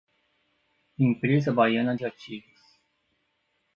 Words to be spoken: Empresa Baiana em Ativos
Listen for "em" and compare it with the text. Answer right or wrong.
wrong